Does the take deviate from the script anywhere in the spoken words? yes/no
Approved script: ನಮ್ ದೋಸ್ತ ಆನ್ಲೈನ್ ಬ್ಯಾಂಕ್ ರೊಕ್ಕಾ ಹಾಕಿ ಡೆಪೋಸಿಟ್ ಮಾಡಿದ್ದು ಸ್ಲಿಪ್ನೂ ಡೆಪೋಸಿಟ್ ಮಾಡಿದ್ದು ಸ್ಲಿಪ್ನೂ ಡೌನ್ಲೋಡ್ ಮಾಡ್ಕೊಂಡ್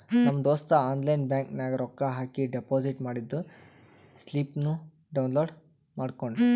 yes